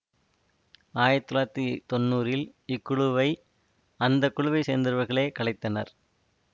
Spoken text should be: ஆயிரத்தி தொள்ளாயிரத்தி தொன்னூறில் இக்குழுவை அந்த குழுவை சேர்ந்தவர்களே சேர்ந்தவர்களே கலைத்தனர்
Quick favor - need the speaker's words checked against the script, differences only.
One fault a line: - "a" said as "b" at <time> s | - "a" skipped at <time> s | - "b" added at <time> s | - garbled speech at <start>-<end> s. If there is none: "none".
- "சேர்ந்தவர்களே" skipped at 5.3 s